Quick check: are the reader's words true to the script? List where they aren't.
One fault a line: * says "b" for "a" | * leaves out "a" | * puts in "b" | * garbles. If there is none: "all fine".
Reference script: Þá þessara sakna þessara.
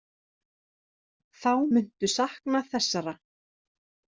* says "muntu" for "þessara"